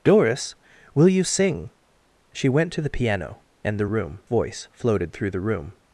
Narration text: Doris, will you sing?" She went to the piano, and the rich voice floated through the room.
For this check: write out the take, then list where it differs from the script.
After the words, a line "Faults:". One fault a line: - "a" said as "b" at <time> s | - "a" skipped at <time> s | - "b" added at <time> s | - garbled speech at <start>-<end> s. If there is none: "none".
Doris, will you sing?" She went to the piano, and the room voice floated through the room.
Faults:
- "rich" said as "room" at 3.9 s